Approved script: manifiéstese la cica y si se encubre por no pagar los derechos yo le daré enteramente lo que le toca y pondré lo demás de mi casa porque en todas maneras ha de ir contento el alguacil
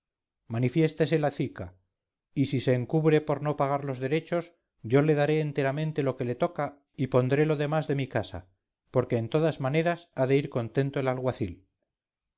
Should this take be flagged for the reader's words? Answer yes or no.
no